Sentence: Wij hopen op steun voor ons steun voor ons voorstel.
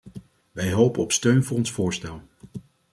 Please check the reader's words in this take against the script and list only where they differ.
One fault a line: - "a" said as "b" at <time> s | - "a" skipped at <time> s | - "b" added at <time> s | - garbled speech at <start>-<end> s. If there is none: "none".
- "steun voor ons" skipped at 1.7 s